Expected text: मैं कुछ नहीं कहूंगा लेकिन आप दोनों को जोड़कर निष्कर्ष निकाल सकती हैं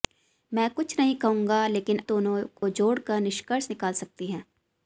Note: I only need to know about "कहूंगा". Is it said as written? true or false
true